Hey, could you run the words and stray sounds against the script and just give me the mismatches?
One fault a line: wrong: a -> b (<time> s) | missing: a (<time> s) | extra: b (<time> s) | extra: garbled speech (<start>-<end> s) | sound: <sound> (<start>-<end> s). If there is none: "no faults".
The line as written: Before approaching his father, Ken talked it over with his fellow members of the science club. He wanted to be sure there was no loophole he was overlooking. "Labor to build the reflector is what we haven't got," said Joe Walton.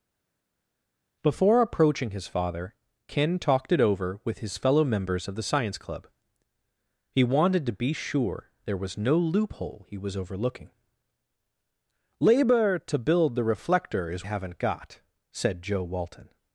missing: what we (14.3 s)